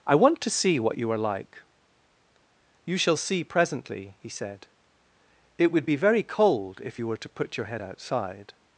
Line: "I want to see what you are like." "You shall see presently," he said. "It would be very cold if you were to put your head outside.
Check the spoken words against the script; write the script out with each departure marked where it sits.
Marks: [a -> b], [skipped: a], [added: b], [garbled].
"I want to see what you are like." "You shall see presently," he said. "It would be very cold if you were to put your head outside.